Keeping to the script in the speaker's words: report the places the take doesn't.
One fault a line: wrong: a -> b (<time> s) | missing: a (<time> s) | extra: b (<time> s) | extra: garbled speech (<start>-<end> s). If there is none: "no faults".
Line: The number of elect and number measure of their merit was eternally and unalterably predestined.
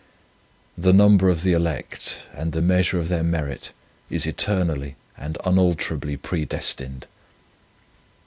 extra: the (1.4 s)
wrong: number -> the (2.5 s)
wrong: was -> is (4.1 s)